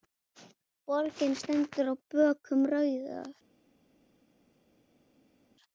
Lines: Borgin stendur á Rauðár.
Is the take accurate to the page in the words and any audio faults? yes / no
no